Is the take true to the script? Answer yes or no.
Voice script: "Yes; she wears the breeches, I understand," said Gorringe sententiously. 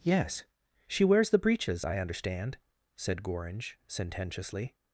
yes